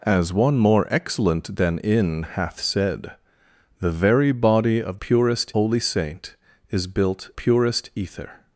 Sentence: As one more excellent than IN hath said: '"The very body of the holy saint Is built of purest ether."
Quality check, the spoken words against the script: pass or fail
fail